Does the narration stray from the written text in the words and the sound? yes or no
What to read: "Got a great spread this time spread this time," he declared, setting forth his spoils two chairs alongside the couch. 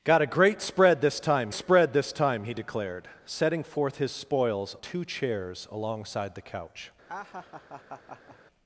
yes